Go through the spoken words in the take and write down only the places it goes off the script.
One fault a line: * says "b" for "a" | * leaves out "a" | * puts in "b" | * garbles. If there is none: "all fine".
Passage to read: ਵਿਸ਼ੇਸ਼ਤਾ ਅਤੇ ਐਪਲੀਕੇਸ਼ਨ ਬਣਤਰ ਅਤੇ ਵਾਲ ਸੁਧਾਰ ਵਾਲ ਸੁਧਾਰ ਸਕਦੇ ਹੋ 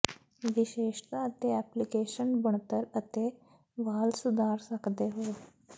* leaves out "ਵਾਲ ਸੁਧਾਰ"